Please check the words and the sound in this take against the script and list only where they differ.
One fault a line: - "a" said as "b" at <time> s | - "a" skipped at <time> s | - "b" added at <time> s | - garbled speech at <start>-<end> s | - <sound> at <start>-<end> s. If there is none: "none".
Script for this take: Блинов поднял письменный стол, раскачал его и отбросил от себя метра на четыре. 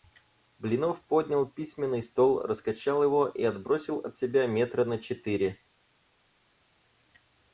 none